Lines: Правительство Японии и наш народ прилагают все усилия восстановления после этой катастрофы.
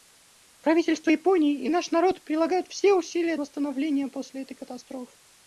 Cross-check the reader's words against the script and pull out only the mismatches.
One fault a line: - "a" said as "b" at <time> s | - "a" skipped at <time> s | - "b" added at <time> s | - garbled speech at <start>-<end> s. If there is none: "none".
none